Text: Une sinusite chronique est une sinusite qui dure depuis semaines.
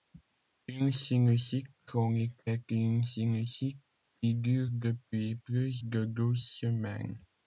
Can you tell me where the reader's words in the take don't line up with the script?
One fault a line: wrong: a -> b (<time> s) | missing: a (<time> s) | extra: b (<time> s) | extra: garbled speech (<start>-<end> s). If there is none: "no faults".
extra: plus de douze (5.4 s)